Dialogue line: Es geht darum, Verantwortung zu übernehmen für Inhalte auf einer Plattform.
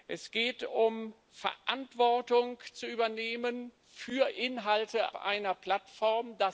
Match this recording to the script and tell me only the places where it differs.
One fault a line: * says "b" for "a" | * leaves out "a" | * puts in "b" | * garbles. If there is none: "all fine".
* leaves out "auf"